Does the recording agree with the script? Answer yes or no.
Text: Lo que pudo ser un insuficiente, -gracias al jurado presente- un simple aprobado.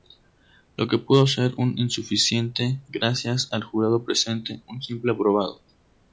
yes